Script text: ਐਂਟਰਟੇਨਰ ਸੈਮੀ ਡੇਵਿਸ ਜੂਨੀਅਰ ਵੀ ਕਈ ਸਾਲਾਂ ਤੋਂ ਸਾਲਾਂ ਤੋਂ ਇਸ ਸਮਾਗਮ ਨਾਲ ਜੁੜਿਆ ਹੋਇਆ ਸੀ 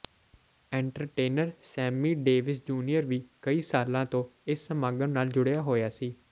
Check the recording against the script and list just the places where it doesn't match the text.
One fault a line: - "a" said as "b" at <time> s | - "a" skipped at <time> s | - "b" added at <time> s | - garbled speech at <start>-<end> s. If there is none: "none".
- "ਸਾਲਾਂ ਤੋਂ" skipped at 4.2 s